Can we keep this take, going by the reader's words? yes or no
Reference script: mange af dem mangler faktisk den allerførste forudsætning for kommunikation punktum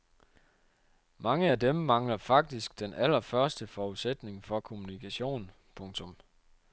yes